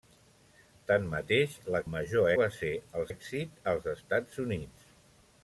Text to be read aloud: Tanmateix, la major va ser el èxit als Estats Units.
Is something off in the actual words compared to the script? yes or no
no